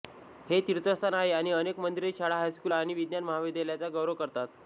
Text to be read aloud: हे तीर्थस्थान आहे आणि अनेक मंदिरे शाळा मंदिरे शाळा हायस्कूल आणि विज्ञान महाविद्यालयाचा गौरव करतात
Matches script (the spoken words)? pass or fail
fail